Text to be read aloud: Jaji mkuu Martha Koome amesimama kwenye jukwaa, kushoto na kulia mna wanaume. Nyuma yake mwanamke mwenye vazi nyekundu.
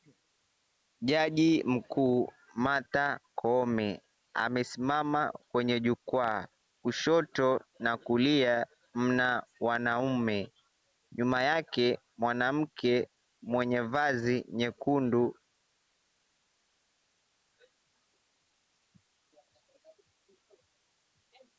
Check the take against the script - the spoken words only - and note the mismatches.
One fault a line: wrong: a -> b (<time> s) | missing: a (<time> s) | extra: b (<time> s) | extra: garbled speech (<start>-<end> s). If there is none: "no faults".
no faults